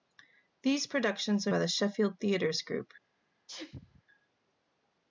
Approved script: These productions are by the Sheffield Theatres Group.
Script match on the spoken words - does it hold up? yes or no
yes